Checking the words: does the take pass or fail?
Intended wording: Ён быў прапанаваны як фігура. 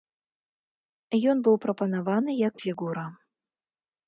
pass